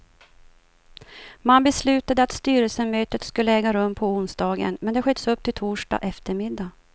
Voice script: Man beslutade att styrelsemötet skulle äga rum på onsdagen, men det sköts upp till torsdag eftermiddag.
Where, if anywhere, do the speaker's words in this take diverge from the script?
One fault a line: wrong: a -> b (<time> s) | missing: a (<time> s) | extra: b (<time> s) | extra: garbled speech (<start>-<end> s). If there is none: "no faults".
no faults